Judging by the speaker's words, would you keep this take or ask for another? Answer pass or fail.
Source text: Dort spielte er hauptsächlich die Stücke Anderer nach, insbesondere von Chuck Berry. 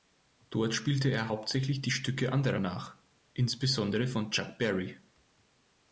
pass